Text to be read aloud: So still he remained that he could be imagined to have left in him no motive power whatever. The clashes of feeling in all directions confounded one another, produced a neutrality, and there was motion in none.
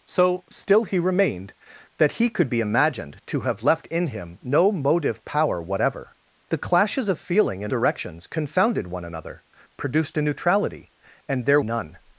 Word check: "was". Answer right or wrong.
wrong